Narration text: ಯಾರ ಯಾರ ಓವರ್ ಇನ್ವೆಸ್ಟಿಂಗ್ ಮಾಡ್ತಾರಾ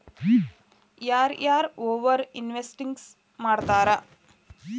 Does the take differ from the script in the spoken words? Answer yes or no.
no